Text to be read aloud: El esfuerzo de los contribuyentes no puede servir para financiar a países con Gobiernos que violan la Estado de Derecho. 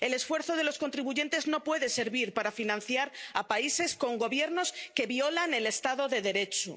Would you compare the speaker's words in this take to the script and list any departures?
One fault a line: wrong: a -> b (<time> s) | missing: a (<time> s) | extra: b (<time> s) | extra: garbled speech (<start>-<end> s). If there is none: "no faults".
wrong: la -> el (5.5 s)